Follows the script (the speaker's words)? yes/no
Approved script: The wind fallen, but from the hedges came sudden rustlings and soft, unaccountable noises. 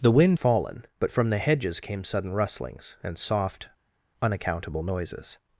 yes